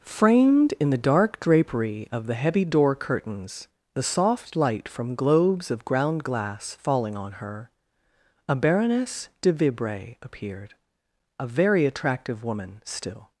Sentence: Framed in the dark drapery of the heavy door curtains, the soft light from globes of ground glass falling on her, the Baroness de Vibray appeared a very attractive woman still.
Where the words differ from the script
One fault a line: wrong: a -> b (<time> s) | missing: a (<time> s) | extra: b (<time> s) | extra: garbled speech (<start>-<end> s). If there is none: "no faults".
wrong: the -> a (8.5 s)